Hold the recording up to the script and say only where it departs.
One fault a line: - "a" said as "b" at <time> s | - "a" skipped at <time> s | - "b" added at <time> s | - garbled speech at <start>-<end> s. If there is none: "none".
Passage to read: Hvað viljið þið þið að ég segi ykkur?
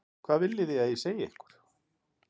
- "þið" skipped at 0.8 s